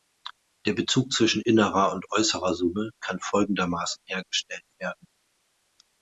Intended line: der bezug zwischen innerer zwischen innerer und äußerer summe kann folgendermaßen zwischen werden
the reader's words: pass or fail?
fail